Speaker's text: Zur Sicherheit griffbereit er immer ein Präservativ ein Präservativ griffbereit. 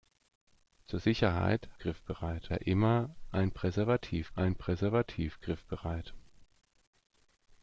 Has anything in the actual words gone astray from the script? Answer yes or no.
no